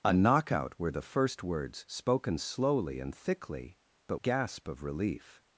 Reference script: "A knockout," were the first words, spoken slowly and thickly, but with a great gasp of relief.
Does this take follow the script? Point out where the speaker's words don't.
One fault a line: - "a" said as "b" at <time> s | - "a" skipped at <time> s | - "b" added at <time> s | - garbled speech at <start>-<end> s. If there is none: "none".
- "with a great" skipped at 4.2 s